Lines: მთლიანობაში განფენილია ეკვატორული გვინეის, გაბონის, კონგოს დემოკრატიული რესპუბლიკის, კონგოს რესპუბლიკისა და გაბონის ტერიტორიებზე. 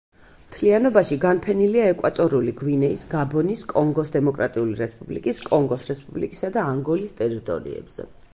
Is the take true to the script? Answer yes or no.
no